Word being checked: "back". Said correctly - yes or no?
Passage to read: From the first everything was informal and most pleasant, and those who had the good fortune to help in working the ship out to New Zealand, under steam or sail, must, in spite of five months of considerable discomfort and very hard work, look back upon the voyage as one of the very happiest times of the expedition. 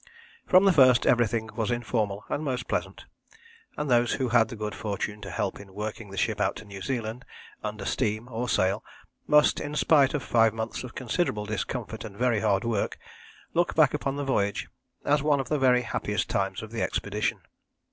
yes